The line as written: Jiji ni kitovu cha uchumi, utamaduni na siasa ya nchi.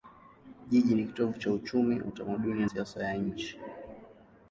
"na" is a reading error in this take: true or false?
true